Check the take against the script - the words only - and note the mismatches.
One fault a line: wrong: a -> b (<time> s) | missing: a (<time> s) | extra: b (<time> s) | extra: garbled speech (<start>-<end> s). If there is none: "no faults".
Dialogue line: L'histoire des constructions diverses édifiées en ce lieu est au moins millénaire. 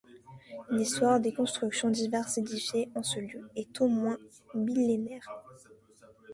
no faults